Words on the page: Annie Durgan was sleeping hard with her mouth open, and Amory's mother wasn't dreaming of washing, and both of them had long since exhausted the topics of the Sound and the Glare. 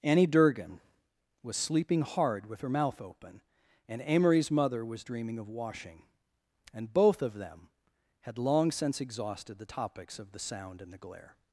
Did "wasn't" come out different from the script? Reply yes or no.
yes